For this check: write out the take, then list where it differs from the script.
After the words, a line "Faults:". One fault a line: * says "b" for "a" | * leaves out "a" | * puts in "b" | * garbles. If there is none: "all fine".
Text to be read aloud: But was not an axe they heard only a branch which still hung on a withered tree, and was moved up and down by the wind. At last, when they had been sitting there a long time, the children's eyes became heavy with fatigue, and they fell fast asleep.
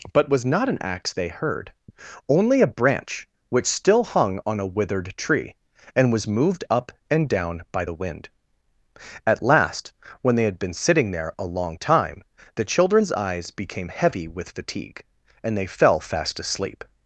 But was not an axe they heard only a branch which still hung on a withered tree, and was moved up and down by the wind. At last, when they had been sitting there a long time, the children's eyes became heavy with fatigue, and they fell fast asleep.
Faults:
all fine